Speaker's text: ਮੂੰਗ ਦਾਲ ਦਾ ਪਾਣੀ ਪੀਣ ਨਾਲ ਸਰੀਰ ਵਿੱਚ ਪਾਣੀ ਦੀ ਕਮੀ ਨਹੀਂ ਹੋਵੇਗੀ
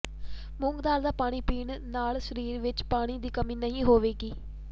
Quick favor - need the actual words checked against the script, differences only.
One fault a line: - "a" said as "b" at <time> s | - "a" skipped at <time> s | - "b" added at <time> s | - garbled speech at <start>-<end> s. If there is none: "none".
none